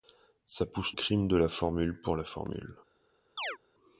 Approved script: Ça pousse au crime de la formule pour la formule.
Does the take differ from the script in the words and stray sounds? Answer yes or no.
yes